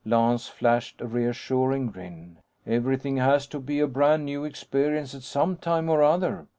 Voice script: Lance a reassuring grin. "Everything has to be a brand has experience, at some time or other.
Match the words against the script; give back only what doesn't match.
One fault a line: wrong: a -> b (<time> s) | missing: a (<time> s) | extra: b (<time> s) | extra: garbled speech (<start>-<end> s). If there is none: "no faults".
extra: flashed (0.5 s)
wrong: has -> new (4.3 s)